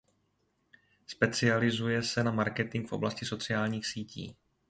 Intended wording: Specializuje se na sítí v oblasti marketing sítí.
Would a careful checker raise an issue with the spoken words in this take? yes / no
yes